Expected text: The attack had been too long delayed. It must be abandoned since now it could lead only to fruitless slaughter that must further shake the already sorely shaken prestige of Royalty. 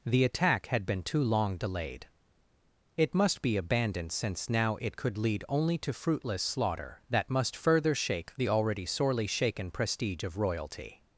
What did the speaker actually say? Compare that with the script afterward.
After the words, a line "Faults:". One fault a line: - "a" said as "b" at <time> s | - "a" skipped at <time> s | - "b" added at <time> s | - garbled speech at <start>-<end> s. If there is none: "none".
The attack had been too long delayed. It must be abandoned since now it could lead only to fruitless slaughter that must further shake the already sorely shaken prestige of Royalty.
Faults:
none